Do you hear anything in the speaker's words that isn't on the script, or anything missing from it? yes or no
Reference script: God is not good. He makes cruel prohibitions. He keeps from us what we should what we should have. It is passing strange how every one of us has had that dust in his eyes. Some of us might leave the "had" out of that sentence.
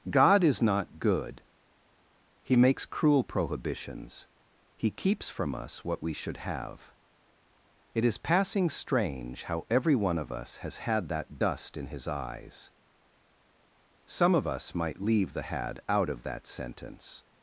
yes